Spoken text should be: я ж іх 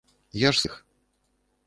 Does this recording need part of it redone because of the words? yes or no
no